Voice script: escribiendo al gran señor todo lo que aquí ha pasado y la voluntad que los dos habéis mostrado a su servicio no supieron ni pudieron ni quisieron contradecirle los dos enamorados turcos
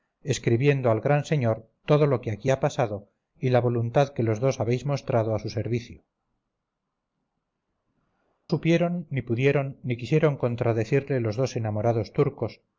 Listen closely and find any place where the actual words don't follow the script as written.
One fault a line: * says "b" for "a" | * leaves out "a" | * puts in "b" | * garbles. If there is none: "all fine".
* leaves out "no"